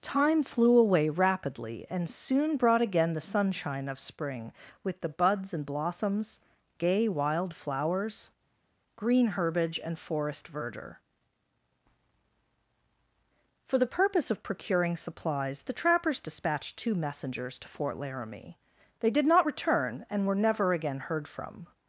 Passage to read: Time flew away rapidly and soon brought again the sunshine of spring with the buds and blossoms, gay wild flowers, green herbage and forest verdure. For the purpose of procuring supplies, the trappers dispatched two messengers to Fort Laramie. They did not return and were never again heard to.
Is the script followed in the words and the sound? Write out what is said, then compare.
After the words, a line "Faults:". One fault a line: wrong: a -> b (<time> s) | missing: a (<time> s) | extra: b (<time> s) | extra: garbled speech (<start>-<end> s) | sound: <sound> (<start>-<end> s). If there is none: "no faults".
Time flew away rapidly and soon brought again the sunshine of spring with the buds and blossoms, gay wild flowers, green herbage and forest verdure. For the purpose of procuring supplies, the trappers dispatched two messengers to Fort Laramie. They did not return and were never again heard from.
Faults:
wrong: to -> from (21.3 s)